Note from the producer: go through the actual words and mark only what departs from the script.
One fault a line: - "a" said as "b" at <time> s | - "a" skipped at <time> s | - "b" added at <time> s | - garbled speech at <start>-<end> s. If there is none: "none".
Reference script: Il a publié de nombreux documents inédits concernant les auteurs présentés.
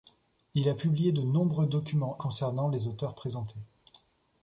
- "inédits" skipped at 2.2 s